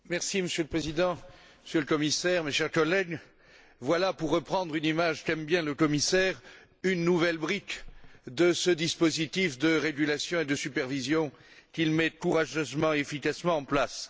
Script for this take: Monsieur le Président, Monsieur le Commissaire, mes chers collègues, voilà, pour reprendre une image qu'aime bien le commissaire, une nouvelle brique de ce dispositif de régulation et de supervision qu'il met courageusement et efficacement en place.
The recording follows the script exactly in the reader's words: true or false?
true